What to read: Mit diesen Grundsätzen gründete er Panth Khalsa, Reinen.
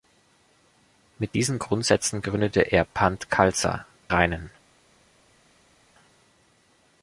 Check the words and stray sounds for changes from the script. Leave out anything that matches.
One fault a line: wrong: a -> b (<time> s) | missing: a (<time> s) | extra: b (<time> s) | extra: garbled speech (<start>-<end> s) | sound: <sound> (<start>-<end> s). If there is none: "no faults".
no faults